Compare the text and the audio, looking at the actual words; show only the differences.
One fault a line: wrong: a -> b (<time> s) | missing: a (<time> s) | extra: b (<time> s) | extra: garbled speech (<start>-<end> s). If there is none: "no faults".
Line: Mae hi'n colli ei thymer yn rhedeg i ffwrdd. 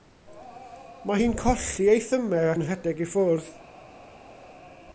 no faults